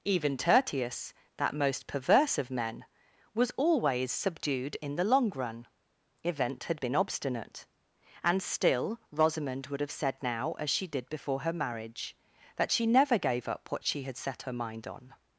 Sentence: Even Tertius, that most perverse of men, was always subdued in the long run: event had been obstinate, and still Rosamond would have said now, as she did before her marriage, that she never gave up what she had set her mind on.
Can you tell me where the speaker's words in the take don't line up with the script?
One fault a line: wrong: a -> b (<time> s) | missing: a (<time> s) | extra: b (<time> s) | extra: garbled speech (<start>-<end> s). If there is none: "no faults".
no faults